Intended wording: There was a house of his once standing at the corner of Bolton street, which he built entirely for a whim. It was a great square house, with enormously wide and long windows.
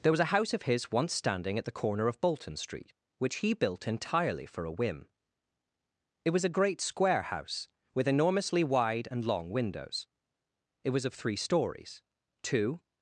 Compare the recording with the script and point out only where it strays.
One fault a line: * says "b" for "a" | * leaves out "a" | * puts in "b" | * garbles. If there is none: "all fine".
* puts in "It was of three stories two"